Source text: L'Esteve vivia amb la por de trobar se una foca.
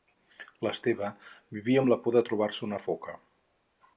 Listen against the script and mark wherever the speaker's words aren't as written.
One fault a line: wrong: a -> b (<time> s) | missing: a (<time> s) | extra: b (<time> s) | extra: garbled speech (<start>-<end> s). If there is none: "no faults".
no faults